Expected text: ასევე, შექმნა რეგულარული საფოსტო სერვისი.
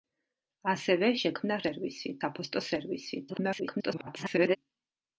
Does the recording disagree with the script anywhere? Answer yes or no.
yes